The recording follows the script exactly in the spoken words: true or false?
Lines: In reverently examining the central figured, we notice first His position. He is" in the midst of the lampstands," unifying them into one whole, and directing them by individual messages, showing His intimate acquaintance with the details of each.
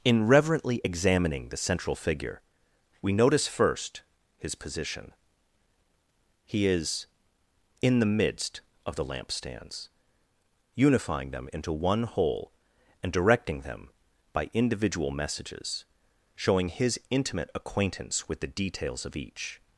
false